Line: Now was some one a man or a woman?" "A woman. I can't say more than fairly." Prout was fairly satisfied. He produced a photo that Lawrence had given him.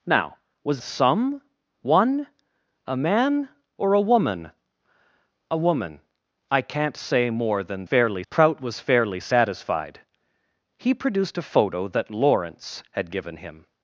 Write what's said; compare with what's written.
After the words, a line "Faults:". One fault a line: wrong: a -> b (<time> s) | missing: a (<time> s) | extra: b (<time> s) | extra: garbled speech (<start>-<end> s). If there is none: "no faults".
Now was some one a man or a woman?" "A woman. I can't say more than fairly." Prout was fairly satisfied. He produced a photo that Lawrence had given him.
Faults:
no faults